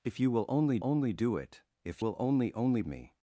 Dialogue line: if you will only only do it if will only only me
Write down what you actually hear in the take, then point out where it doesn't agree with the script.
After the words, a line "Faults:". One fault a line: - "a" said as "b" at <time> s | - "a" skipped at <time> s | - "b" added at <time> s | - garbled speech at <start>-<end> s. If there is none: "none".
if you will only only do it if will only only me
Faults:
none